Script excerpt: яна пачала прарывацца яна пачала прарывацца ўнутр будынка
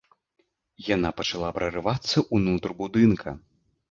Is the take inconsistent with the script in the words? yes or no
yes